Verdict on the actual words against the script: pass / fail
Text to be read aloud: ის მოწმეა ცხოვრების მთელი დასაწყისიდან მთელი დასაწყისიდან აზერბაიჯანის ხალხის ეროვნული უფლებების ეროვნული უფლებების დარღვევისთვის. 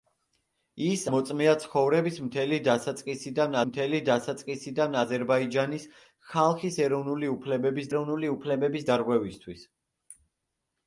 pass